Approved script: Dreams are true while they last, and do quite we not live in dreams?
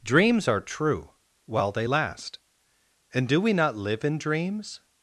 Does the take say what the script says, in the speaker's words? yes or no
no